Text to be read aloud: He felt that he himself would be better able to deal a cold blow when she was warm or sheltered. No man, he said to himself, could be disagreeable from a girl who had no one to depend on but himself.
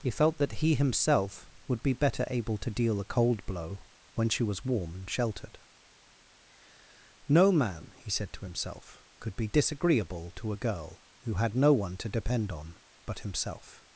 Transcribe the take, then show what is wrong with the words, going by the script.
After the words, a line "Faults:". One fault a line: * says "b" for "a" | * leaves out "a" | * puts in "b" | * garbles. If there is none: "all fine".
He felt that he himself would be better able to deal a cold blow when she was warm and sheltered. No man, he said to himself, could be disagreeable to a girl who had no one to depend on but himself.
Faults:
* says "and" for "or"
* says "to" for "from"